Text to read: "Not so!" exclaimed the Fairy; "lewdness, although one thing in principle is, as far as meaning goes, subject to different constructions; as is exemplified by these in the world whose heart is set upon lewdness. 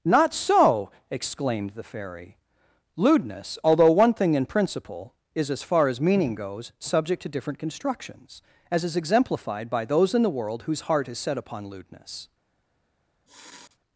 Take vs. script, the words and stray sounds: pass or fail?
fail